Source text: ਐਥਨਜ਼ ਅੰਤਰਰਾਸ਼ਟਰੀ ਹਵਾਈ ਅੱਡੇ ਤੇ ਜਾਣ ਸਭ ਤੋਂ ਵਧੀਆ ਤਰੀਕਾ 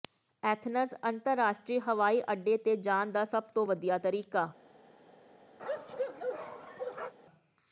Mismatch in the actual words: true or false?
true